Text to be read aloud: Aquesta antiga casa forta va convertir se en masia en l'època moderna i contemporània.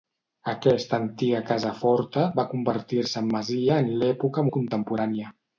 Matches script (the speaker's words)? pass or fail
fail